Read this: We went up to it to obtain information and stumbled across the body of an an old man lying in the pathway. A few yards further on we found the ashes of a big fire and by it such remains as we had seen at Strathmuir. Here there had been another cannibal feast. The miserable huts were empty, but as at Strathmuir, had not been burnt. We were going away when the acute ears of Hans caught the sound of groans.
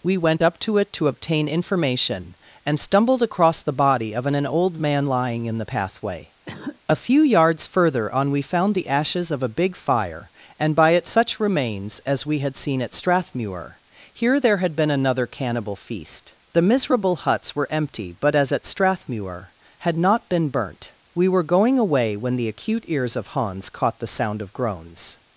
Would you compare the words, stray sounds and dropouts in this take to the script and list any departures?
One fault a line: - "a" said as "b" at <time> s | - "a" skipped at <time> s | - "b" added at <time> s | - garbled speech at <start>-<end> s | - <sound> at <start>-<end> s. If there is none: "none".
- cough at 6.5-6.8 s